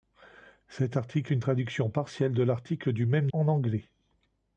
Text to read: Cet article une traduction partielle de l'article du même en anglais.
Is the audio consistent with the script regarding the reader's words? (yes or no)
yes